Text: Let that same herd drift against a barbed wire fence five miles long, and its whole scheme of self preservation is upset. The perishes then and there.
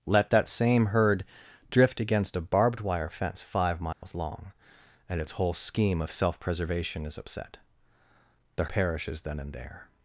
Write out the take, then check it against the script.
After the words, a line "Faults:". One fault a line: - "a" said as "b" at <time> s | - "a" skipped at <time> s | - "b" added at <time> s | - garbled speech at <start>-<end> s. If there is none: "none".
Let that same herd drift against a barbed wire fence five miles long, and its whole scheme of self preservation is upset. The perishes then and there.
Faults:
none